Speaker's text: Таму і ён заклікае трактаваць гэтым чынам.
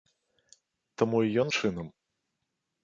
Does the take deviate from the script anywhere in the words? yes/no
yes